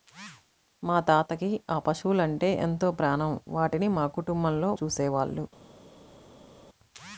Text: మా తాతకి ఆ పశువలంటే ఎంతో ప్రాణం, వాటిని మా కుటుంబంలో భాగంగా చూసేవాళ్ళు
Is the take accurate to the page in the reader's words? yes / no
no